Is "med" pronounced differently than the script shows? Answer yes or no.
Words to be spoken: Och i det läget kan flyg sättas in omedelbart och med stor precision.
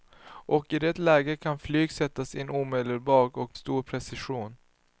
yes